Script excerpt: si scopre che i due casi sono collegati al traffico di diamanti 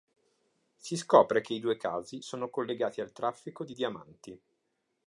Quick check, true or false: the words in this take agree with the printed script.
true